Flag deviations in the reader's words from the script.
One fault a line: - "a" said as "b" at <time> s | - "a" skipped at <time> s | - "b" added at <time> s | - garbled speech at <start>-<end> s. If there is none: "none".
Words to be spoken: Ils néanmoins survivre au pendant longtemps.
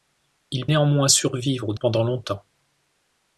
none